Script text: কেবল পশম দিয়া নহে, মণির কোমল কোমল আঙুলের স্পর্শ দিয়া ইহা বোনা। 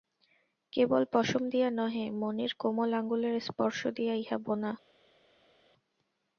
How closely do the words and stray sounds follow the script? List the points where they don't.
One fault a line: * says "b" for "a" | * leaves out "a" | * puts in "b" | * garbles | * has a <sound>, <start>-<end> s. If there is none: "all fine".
* leaves out "কোমল"